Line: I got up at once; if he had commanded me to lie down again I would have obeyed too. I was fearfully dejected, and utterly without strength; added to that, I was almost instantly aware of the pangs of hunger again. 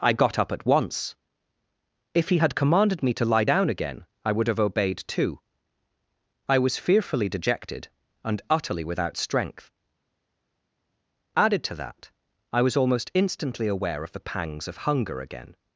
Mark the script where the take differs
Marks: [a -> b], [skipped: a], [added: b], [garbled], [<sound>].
I got up at once; if he had commanded me to lie down again I would have obeyed too. I was fearfully dejected, and utterly without strength; added to that, I was almost instantly aware of the pangs of hunger again.